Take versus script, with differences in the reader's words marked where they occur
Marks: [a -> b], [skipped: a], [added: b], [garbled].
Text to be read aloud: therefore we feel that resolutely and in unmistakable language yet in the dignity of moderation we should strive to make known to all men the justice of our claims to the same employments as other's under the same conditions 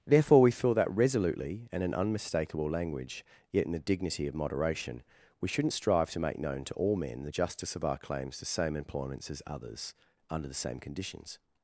therefore we feel that resolutely and in unmistakable language yet in the dignity of moderation we [should -> shouldn't] strive to make known to all men the justice of our claims to [skipped: the] same employments as other's under the same conditions